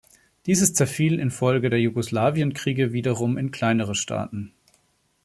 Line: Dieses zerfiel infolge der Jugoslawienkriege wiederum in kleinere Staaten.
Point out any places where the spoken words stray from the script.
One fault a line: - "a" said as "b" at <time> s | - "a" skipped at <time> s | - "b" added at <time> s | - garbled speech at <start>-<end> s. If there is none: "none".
none